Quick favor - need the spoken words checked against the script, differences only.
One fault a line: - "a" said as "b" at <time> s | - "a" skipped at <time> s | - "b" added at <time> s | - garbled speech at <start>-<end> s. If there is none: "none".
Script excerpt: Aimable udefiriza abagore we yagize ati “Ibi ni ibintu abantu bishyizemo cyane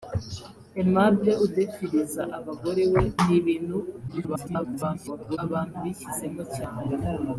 - "yagize ati Ibi" skipped at 3.0 s
- garbled speech at 4.1-5.4 s